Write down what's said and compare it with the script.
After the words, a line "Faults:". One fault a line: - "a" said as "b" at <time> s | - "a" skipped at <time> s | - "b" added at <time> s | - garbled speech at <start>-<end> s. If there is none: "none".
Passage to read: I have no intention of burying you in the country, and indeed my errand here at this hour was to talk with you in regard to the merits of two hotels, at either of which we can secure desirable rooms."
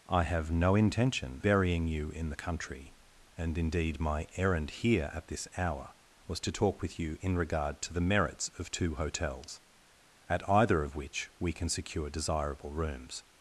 I have no intention burying you in the country, and indeed my errand here at this hour was to talk with you in regard to the merits of two hotels, at either of which we can secure desirable rooms."
Faults:
- "of" skipped at 1.4 s